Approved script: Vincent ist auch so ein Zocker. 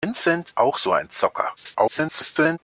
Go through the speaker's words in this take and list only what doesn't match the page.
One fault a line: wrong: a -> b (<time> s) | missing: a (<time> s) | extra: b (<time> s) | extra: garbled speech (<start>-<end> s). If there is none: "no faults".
missing: ist (0.5 s)
extra: garbled speech (1.6-2.6 s)